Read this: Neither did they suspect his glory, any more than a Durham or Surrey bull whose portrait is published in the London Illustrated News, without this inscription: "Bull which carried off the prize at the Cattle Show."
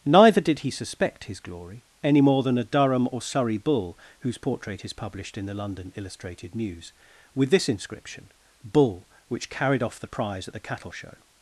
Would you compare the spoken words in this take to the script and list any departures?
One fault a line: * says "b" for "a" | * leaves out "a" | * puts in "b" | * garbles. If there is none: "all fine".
* says "he" for "they"
* says "with" for "without"